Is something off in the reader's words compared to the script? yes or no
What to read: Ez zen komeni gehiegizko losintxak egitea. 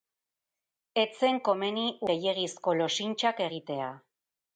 no